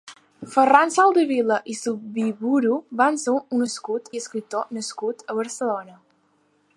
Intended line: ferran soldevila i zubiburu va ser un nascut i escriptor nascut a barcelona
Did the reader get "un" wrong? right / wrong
right